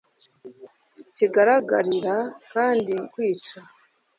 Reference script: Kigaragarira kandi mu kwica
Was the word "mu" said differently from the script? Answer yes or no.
yes